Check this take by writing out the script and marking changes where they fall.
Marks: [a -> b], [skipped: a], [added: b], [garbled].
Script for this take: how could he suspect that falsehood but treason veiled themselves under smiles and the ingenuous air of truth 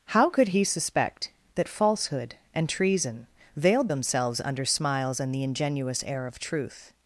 how could he suspect that falsehood [but -> and] treason veiled themselves under smiles and the ingenuous air of truth